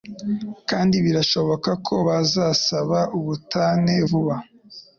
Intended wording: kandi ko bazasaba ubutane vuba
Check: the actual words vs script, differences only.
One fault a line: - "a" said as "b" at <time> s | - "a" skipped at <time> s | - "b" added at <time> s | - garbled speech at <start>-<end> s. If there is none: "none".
- "birashoboka" added at 1.1 s